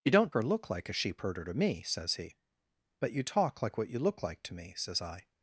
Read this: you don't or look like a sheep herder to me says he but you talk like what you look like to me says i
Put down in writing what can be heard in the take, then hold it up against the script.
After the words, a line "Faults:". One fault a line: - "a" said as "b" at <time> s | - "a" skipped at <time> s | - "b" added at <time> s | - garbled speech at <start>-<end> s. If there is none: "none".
you don't or look like a sheep herder to me says he but you talk like what you look like to me says i
Faults:
none